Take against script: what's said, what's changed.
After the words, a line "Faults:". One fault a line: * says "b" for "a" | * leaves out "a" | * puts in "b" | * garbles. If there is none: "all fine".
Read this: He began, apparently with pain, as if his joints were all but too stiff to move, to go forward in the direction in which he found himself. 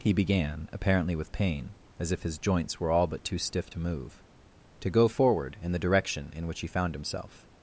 He began, apparently with pain, as if his joints were all but too stiff to move, to go forward in the direction in which he found himself.
Faults:
all fine